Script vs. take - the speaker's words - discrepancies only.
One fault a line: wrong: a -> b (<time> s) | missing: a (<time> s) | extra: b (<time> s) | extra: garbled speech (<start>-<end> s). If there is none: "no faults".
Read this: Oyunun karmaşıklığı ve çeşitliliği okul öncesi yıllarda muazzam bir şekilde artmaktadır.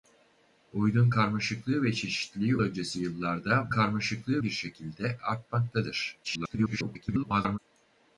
missing: okul (2.6 s)
wrong: muazzam -> karmaşıklığı (3.7 s)
extra: garbled speech (6.2-7.6 s)